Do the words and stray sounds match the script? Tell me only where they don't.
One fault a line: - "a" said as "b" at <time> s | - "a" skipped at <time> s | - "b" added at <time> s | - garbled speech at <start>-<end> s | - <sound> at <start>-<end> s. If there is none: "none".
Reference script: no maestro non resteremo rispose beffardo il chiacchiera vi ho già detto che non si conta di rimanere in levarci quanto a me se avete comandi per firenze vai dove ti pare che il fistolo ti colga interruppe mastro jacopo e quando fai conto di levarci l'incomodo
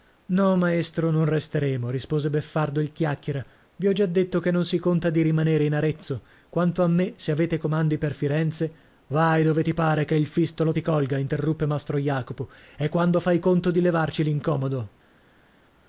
- "levarci" said as "arezzo" at 5.8 s